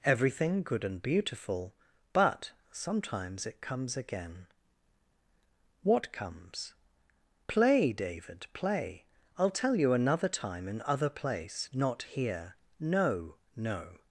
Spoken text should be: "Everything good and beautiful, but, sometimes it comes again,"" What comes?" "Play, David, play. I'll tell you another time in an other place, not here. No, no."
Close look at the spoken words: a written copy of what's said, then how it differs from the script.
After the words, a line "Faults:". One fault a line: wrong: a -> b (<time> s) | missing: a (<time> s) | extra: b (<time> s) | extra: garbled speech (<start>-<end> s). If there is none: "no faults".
"Everything good and beautiful, but, sometimes it comes again,"" What comes?" "Play, David, play. I'll tell you another time in other place, not here. No, no."
Faults:
missing: an (10.8 s)